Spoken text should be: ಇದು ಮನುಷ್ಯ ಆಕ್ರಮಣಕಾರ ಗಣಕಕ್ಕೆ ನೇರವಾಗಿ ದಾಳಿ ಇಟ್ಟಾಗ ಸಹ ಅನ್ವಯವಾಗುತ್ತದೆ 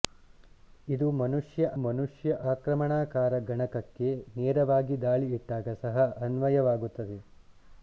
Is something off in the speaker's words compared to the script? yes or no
yes